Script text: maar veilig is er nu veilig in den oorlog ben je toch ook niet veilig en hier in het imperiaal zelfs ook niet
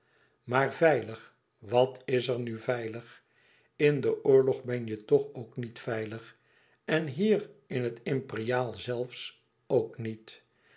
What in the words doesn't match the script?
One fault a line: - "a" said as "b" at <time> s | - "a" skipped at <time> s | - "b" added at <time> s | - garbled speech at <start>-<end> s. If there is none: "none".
- "wat" added at 1.6 s